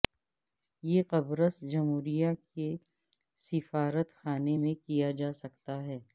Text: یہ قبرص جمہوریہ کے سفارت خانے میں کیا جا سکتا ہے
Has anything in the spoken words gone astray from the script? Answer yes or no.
no